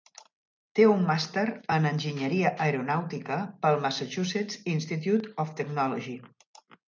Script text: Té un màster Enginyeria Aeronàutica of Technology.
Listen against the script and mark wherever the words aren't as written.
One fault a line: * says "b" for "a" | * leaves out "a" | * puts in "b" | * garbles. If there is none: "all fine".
* puts in "en"
* puts in "pel Massachusetts Institute"